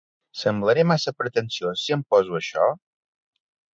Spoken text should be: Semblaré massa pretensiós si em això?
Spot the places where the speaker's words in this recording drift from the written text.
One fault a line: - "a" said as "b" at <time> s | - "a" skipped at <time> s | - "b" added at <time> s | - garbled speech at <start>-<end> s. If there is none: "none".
- "poso" added at 2.1 s